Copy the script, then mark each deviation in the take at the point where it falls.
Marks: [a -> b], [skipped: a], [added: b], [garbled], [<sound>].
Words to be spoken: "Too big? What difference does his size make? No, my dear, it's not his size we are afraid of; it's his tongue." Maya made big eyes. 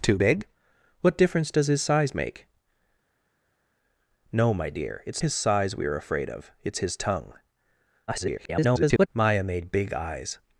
"Too big? What difference does his size make? No, my dear, it's [skipped: not] his size we are afraid of; it's his tongue." [garbled] Maya made big eyes.